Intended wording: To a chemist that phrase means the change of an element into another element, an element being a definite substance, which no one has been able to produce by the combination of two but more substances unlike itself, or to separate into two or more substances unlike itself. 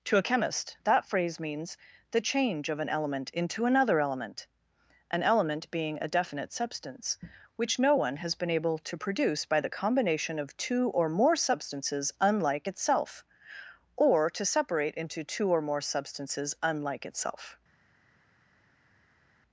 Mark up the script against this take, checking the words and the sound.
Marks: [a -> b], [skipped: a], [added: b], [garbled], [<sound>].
To a chemist that phrase means the change of an element into another element, an element being a definite substance, which no one has been able to produce by the combination of two [but -> or] more substances unlike itself, or to separate into two or more substances unlike itself.